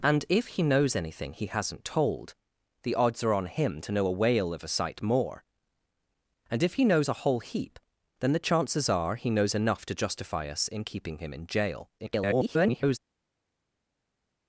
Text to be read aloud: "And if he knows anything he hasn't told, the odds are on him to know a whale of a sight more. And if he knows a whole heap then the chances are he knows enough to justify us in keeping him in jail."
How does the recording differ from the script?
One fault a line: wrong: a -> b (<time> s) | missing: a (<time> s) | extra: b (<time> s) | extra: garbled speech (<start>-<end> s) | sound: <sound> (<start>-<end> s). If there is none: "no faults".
extra: garbled speech (12.0-13.0 s)